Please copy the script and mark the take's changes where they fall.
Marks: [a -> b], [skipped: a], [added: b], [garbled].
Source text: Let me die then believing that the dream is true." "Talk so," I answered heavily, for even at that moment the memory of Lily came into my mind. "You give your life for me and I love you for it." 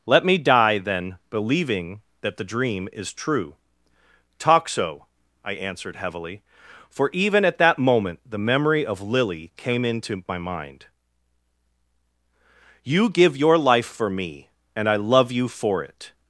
Let me die then believing that the dream is true." "Talk so," I answered heavily, for even at that moment the memory of Lily came into my mind. "You give your life for me and I love you for it."